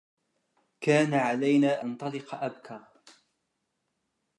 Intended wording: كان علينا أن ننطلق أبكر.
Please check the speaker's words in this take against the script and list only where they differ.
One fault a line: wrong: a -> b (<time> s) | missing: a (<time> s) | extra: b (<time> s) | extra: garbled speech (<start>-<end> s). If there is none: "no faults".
missing: أن (1.9 s)